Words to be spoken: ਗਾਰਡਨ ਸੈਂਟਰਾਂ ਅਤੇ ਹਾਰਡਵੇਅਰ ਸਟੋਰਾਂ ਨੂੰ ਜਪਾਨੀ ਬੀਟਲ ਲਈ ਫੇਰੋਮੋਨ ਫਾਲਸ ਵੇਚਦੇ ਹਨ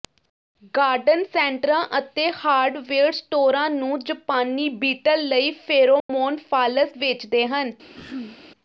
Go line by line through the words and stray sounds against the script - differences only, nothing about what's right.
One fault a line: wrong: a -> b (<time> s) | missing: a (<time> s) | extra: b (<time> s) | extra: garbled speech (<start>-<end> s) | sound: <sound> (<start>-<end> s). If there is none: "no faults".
sound: dropout (6.0-6.1 s)
sound: throat clearing (8.0-8.4 s)